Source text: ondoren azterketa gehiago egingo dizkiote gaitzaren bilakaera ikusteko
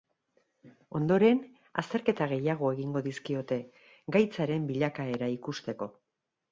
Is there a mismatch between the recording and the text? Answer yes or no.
no